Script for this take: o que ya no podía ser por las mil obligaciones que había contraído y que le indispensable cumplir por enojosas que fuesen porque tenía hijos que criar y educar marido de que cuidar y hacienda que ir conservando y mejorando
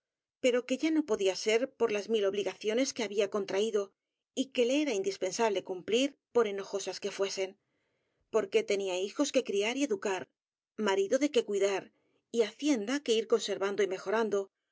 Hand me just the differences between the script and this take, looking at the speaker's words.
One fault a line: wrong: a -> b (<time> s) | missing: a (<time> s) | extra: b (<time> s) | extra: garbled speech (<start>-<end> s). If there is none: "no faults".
wrong: o -> pero (0.4 s)
extra: era (4.8 s)